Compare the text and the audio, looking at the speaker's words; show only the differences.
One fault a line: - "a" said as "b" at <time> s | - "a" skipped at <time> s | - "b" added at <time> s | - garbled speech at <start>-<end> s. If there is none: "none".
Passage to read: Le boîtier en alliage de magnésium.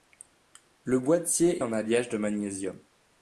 none